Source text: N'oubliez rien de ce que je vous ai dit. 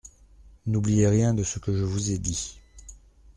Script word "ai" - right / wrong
right